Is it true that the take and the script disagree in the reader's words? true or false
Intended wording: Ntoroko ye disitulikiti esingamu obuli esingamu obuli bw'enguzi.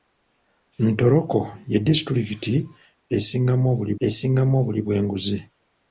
false